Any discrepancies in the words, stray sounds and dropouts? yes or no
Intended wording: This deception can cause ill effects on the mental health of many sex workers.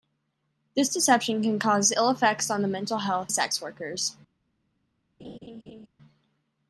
yes